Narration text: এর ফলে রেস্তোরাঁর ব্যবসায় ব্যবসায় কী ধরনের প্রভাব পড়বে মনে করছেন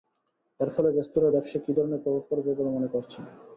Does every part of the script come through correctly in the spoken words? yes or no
no